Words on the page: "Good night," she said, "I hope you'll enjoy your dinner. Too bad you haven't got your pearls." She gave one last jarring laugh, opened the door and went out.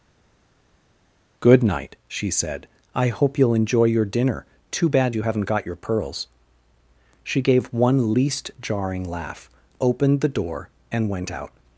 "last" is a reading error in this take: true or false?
true